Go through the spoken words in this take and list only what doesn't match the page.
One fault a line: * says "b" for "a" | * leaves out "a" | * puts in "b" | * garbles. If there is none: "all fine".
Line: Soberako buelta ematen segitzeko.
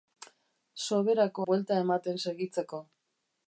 all fine